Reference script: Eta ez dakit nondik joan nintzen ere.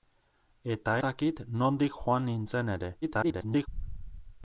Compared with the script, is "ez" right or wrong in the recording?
wrong